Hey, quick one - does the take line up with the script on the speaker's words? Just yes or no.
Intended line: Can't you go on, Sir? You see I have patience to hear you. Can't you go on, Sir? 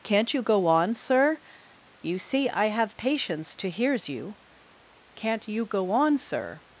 no